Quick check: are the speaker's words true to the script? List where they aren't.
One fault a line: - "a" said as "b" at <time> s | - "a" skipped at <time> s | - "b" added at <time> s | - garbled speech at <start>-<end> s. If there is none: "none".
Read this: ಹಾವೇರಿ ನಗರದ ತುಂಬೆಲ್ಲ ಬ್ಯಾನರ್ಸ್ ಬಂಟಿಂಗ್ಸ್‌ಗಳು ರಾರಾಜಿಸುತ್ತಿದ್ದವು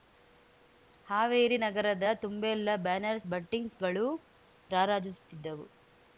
none